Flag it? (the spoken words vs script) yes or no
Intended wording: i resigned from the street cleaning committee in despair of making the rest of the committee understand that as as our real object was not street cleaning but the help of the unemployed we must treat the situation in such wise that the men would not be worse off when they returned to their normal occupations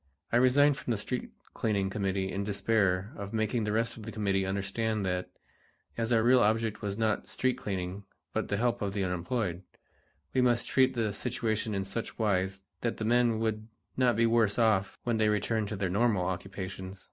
yes